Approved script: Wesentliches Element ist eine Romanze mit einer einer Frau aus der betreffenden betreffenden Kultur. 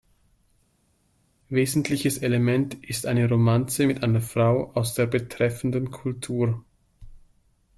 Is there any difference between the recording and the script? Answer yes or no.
yes